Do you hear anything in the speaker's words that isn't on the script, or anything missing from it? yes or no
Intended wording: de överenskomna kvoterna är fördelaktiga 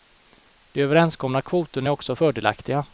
yes